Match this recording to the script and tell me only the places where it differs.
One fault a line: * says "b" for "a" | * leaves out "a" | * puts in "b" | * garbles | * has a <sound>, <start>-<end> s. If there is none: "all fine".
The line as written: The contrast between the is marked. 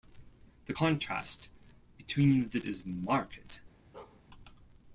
* has a bark, 3.9-4.2 s